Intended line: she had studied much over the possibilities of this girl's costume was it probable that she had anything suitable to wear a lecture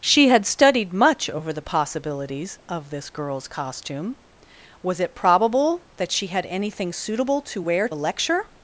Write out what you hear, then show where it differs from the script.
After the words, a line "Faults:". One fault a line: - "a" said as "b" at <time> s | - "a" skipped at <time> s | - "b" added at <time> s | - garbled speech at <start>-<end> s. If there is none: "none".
she had studied much over the possibilities of this girl's costume was it probable that she had anything suitable to wear a lecture
Faults:
none